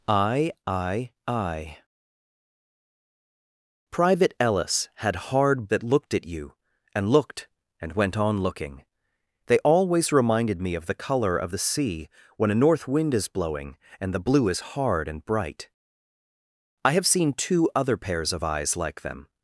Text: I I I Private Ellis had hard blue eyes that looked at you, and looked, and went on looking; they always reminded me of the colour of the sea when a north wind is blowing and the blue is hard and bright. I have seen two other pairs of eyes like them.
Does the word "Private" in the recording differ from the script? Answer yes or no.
no